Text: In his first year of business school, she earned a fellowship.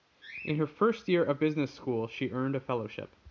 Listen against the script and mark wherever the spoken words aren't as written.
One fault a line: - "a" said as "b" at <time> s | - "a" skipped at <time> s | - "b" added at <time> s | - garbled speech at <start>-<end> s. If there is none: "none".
- "his" said as "her" at 0.6 s